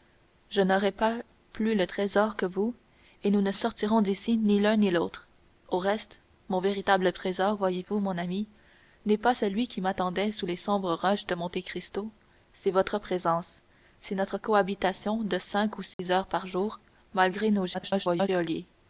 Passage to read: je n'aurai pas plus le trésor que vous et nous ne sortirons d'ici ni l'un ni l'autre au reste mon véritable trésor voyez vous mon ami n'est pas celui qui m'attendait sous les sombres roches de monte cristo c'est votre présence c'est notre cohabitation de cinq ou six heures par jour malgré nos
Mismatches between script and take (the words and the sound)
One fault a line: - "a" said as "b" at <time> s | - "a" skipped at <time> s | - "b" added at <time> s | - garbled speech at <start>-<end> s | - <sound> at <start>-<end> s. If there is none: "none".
- dropout at 15.9-16.0 s
- garbled speech at 17.7-18.3 s